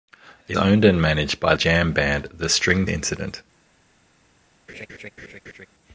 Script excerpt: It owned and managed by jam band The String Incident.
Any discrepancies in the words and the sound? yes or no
yes